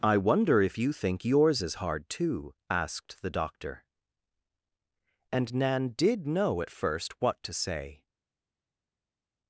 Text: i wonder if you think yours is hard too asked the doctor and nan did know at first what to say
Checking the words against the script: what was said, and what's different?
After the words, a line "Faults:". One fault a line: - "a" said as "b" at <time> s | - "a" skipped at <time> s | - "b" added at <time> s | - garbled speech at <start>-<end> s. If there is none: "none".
i wonder if you think yours is hard too asked the doctor and nan did know at first what to say
Faults:
none